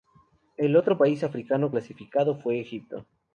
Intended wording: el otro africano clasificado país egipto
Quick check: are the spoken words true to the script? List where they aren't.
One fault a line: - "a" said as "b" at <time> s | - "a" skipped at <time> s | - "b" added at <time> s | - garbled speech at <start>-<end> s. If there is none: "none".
- "país" added at 0.9 s
- "país" said as "fue" at 2.3 s